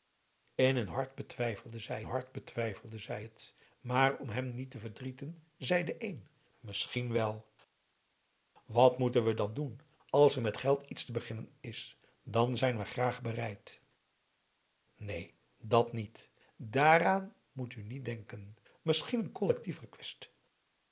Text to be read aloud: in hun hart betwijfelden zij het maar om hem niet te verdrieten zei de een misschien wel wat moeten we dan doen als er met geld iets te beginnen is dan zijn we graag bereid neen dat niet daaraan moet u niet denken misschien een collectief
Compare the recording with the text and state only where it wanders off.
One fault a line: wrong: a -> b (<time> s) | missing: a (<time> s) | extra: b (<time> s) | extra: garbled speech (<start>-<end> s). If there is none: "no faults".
extra: hart betwijfelden zij (2.0 s)